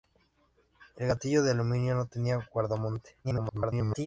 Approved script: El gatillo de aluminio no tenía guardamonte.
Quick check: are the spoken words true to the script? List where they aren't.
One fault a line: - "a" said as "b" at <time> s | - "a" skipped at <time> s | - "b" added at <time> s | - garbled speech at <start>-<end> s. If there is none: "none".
- garbled speech at 3.2-4.1 s